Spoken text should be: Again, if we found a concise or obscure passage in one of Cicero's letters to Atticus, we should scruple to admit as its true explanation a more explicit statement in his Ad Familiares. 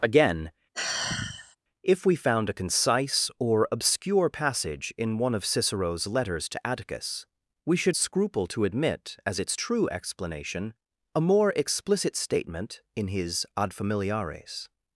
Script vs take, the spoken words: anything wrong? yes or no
no